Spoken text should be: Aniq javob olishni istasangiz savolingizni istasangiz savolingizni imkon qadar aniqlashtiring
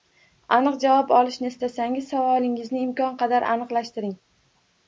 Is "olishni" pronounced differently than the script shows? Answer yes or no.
no